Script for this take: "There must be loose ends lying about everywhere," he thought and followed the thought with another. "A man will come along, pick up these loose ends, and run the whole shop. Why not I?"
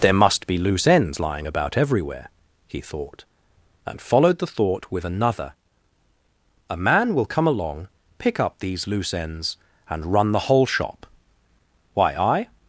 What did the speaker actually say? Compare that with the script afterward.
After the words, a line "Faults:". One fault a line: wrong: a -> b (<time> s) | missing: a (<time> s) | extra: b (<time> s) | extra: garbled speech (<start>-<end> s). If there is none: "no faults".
"There must be loose ends lying about everywhere," he thought and followed the thought with another. "A man will come along, pick up these loose ends, and run the whole shop. Why I?"
Faults:
missing: not (12.1 s)